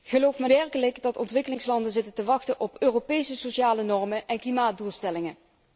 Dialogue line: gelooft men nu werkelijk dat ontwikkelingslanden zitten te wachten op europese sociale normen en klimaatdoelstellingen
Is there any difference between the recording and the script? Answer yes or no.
yes